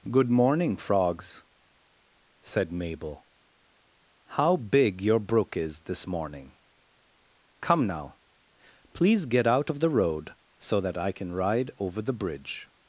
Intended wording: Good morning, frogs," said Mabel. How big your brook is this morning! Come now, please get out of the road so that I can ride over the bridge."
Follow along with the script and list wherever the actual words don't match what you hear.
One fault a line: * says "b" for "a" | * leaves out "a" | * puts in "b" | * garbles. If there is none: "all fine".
all fine